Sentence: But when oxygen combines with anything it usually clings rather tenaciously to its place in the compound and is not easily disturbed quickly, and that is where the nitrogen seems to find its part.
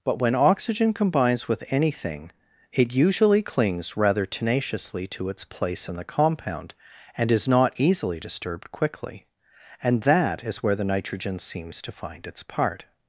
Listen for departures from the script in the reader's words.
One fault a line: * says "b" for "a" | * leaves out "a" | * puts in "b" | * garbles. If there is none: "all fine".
all fine